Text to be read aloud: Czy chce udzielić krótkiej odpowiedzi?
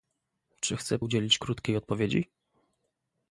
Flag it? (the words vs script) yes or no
no